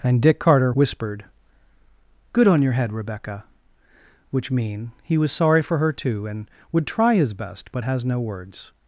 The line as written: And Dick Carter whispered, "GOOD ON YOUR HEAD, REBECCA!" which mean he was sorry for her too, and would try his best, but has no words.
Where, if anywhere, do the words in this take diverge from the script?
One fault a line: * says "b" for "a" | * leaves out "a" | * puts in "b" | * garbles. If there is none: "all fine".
all fine